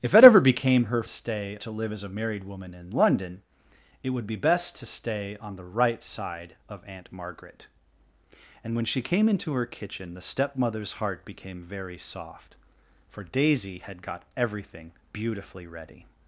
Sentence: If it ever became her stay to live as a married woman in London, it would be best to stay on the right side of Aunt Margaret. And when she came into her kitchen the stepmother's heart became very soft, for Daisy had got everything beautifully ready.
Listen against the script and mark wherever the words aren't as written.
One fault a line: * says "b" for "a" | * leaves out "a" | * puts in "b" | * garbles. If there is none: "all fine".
all fine